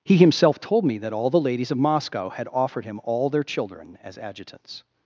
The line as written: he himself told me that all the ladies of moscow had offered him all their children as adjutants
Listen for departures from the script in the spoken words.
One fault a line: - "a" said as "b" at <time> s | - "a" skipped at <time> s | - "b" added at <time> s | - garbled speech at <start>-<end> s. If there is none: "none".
none